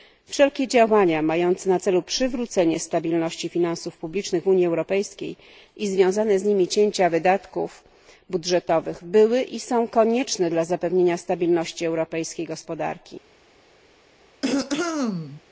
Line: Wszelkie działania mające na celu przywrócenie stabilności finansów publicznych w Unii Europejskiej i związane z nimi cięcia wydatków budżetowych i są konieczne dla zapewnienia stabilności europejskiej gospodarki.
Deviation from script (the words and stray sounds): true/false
true